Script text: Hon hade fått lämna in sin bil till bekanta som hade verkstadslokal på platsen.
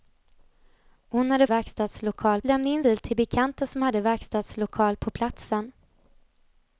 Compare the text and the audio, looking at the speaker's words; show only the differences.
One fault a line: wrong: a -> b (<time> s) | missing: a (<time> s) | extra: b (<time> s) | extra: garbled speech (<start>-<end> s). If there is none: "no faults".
wrong: fått -> verkstadslokal (1.5 s)
missing: sin (2.8 s)